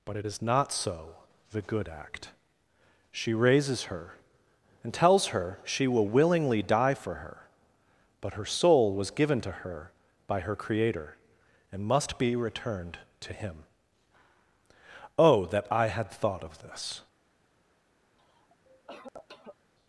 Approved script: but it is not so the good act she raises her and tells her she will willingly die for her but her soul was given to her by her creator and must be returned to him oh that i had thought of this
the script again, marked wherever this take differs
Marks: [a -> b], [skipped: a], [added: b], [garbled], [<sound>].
but it is not so the good act she raises her and tells her she will willingly die for her but her soul was given to her by her creator and must be returned to him oh that i had thought of this [cough]